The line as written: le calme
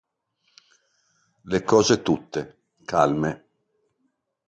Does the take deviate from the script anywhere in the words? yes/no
yes